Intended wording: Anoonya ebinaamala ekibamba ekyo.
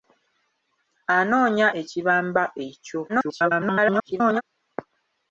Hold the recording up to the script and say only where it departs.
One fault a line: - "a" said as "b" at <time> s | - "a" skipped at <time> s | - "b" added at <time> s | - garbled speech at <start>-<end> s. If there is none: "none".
- "ebinaamala" skipped at 1.7 s
- garbled speech at 3.1-4.4 s